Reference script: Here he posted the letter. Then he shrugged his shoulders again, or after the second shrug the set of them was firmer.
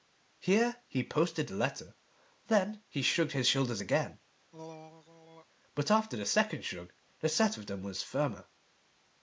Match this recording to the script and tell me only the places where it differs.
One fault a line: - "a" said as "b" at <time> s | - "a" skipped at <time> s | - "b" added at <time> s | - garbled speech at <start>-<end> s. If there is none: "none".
- "or" said as "but" at 5.7 s